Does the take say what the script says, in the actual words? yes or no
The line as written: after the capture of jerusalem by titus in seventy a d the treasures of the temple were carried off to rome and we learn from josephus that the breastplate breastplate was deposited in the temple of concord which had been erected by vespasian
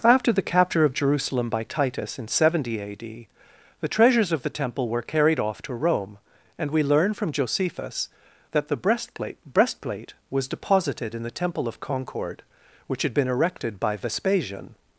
yes